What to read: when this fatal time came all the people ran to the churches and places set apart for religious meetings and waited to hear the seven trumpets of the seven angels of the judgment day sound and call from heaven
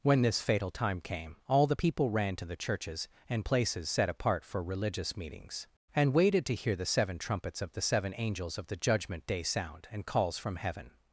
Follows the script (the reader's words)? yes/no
no